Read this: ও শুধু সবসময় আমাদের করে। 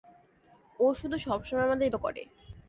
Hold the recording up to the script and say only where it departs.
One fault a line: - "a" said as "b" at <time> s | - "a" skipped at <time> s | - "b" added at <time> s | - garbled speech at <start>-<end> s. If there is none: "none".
none